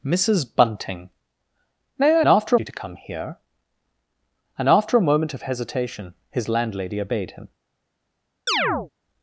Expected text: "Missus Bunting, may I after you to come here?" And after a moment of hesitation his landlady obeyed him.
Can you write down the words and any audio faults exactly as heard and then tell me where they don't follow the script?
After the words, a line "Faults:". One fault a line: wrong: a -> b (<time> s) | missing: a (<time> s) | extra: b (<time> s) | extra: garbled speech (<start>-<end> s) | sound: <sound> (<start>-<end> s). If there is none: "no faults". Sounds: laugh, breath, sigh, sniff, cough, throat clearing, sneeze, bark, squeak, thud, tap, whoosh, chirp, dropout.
"Missus Bunting, may I after you to come here?" And after a moment of hesitation his landlady obeyed him.
Faults:
sound: chirp (8.5-8.9 s)